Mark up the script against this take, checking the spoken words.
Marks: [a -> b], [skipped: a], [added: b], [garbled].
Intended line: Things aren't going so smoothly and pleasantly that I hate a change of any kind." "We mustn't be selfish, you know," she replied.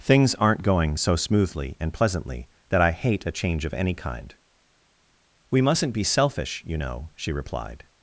Things aren't going so smoothly and pleasantly that I hate a change of any kind." "We mustn't be selfish, you know," she replied.